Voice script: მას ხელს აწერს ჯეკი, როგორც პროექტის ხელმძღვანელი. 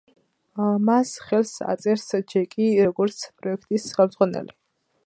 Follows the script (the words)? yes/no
yes